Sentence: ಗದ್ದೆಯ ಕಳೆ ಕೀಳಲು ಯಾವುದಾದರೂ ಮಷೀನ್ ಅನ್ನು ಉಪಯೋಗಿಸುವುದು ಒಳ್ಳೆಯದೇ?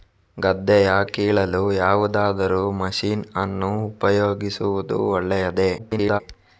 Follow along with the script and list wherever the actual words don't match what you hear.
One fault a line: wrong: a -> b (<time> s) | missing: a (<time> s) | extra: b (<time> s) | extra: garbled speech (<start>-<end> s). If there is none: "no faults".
missing: ಕಳೆ (0.9 s)
extra: garbled speech (5.8-6.2 s)